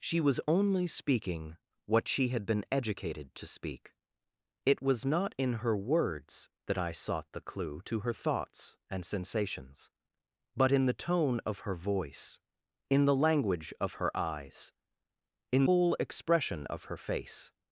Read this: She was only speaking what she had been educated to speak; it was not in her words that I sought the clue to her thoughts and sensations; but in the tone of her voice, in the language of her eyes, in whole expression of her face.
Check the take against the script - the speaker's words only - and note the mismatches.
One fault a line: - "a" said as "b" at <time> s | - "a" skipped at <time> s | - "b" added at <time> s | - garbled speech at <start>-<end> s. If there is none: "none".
none